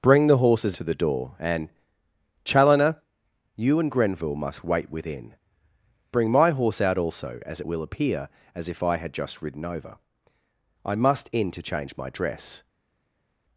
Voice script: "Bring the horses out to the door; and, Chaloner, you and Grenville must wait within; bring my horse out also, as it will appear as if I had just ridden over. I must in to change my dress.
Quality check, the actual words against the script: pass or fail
fail